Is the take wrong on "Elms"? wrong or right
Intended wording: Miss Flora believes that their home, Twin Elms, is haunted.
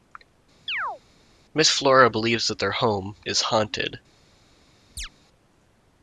wrong